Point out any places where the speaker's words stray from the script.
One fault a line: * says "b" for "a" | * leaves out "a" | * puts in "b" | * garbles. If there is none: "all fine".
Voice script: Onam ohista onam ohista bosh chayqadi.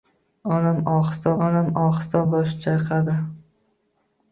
all fine